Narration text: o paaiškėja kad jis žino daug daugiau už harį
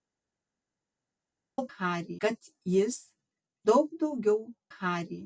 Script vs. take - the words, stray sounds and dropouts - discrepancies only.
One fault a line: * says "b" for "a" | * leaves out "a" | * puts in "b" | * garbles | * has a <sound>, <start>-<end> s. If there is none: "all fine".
* says "harį" for "paaiškėja"
* leaves out "žino"
* leaves out "už"